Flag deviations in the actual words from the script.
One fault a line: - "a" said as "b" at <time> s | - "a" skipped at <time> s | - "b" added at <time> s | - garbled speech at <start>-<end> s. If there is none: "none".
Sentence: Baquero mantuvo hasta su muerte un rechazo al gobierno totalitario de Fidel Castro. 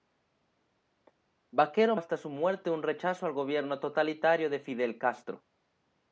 - "mantuvo" skipped at 1.9 s